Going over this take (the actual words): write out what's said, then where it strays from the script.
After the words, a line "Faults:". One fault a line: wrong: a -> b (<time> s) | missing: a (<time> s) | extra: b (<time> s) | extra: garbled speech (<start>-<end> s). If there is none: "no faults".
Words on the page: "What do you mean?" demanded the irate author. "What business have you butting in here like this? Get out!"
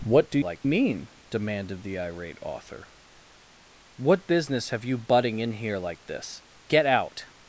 "What do like mean?" demanded the irate author. "What business have you butting in here like this? Get out!"
Faults:
wrong: you -> like (0.4 s)